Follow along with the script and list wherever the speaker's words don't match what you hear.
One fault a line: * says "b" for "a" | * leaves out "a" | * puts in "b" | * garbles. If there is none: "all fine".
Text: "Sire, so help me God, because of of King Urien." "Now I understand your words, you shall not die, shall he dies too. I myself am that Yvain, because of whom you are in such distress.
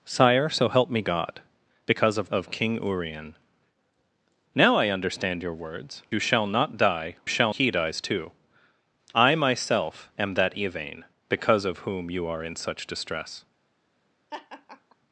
all fine